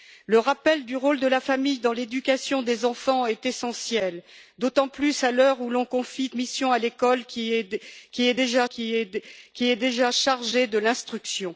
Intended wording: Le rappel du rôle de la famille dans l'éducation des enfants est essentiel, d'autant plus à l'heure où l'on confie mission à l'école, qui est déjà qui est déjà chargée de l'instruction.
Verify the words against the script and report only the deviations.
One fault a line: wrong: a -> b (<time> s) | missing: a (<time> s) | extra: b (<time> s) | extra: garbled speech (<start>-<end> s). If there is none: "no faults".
no faults